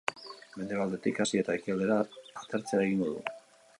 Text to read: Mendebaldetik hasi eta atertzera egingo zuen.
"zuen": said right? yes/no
no